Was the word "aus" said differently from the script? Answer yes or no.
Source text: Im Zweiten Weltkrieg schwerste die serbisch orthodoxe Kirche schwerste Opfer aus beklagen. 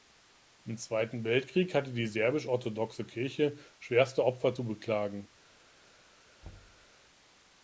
yes